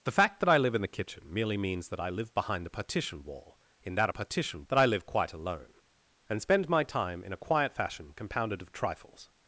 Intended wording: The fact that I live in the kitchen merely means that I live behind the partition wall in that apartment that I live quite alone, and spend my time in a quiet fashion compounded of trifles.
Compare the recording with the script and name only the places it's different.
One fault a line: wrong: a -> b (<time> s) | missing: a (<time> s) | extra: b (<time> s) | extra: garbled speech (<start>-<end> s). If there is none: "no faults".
wrong: apartment -> partition (4.1 s)